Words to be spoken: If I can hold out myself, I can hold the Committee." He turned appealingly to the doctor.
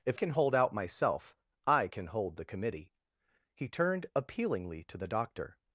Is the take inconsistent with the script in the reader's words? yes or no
yes